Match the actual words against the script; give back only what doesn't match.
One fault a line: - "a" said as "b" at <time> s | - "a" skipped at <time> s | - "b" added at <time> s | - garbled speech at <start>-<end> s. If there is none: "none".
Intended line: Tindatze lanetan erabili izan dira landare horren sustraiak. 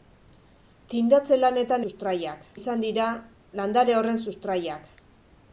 - "erabili" said as "sustraiak" at 1.8 s